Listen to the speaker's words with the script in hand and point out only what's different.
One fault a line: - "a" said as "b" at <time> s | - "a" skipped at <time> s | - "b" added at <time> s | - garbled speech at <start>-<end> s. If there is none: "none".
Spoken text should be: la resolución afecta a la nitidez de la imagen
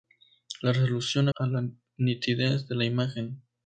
- "afecta" skipped at 1.3 s